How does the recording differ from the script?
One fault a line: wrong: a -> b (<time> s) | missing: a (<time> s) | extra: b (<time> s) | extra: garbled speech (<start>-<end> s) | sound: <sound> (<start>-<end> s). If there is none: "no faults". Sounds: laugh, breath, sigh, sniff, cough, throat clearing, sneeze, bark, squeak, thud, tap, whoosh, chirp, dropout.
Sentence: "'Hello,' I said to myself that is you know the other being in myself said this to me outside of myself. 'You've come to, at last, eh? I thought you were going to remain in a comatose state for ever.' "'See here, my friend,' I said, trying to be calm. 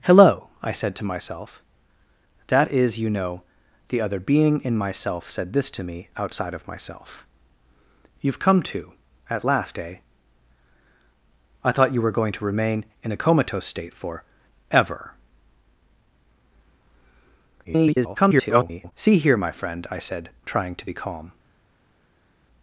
extra: garbled speech (17.6-18.9 s)